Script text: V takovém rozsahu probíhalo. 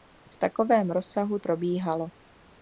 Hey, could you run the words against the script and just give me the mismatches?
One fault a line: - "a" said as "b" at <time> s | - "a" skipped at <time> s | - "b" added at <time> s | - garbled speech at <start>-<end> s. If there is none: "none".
none